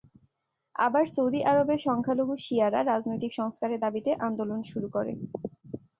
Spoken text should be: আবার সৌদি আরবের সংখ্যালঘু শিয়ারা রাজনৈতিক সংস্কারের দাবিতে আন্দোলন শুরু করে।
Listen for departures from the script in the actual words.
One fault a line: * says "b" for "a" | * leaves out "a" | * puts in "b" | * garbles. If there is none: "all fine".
all fine